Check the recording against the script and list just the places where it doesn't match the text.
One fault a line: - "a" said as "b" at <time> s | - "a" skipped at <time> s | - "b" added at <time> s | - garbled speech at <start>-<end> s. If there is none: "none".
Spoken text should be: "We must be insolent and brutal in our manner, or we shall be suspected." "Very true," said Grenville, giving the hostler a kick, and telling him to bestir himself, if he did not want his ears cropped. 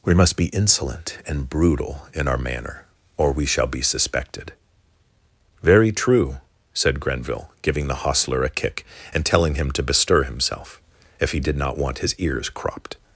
none